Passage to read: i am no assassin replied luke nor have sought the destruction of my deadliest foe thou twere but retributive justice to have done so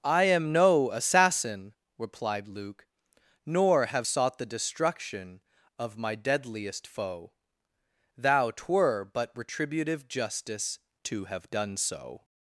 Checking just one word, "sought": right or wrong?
right